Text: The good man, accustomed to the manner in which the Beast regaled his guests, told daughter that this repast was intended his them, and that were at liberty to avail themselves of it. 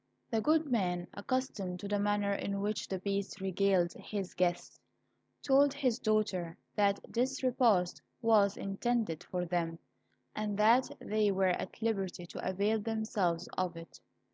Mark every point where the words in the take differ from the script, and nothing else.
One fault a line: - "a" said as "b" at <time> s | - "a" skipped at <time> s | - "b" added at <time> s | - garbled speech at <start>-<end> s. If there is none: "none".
- "his" added at 5.7 s
- "his" said as "for" at 9.3 s
- "they" added at 11.0 s